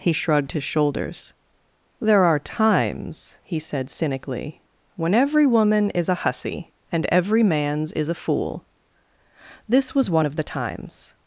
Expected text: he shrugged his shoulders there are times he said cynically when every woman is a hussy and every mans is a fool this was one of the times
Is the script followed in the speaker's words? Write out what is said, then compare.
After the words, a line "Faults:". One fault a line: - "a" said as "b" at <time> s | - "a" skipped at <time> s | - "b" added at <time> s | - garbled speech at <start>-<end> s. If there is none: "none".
he shrugged his shoulders there are times he said cynically when every woman is a hussy and every mans is a fool this was one of the times
Faults:
none